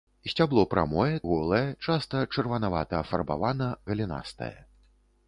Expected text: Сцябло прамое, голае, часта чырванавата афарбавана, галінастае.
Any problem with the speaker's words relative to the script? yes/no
no